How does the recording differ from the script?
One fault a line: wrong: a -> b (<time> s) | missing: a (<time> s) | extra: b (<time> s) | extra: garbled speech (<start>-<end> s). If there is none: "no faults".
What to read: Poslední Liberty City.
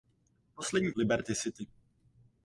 no faults